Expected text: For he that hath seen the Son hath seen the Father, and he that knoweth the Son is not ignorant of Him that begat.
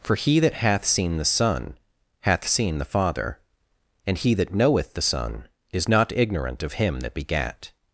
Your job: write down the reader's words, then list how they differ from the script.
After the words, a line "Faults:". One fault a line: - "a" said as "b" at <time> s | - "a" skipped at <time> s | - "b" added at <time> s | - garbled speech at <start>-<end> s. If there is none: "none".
For he that hath seen the Son hath seen the Father, and he that knoweth the Son is not ignorant of Him that begat.
Faults:
none